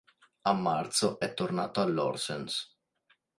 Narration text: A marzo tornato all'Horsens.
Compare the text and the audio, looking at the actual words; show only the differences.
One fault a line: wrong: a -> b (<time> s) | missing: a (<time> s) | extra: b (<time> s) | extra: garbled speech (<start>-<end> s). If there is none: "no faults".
extra: è (1.2 s)